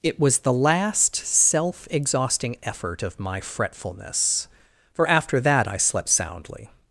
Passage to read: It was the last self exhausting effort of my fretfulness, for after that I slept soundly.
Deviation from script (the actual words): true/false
false